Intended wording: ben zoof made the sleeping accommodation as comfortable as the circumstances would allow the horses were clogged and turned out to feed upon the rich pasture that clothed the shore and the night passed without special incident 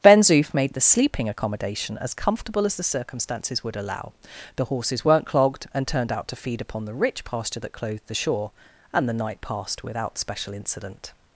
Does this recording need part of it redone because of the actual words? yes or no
yes